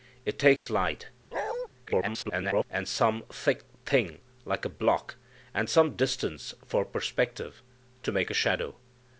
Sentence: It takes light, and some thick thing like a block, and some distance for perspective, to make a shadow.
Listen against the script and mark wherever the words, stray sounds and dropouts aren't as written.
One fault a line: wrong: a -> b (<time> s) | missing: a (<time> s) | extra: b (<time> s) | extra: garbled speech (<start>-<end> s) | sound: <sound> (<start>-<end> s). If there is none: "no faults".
sound: dropout (0.6-0.7 s)
sound: bark (1.3-1.7 s)
extra: garbled speech (1.9-2.6 s)